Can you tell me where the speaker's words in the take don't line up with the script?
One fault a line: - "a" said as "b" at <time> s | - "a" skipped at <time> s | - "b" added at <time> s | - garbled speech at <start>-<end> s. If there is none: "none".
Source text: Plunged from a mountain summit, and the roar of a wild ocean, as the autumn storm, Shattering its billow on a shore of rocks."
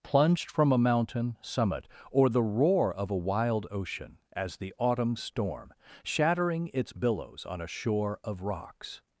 - "and" said as "or" at 2.1 s
- "billow" said as "billows" at 6.9 s